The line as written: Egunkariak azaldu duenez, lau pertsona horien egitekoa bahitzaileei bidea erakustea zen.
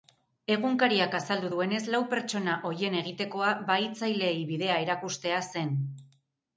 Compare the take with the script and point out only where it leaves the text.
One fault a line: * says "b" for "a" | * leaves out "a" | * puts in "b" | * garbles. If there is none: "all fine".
all fine